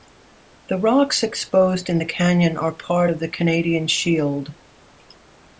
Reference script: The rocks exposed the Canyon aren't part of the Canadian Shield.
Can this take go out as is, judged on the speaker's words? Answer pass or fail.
fail